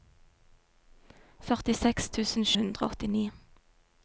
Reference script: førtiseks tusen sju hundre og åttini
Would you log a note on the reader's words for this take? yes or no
yes